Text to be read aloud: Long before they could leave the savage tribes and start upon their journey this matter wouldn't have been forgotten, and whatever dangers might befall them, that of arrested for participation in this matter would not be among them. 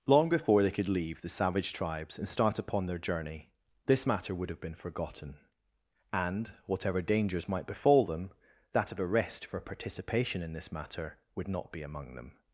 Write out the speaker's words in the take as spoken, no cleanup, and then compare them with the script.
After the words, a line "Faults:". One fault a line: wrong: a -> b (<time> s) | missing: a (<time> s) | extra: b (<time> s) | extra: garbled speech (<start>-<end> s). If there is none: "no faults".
Long before they could leave the savage tribes and start upon their journey this matter would have been forgotten, and whatever dangers might befall them, that of arrest for participation in this matter would not be among them.
Faults:
wrong: wouldn't -> would (4.4 s)
wrong: arrested -> arrest (9.0 s)